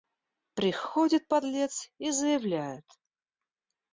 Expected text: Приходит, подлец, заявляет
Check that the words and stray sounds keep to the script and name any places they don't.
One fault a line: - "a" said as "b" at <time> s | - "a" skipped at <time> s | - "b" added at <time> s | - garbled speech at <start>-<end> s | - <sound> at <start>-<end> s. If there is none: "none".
- "и" added at 2.0 s